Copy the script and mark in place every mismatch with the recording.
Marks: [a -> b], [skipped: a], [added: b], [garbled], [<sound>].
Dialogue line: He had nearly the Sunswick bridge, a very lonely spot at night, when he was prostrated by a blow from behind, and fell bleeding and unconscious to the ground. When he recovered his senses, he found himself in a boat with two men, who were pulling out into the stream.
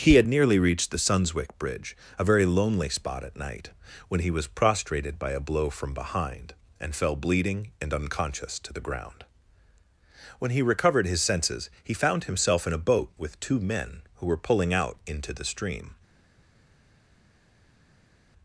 He had nearly [added: reached] the Sunswick bridge, a very lonely spot at night, when he was prostrated by a blow from behind, and fell bleeding and unconscious to the ground. When he recovered his senses, he found himself in a boat with two men, who were pulling out into the stream.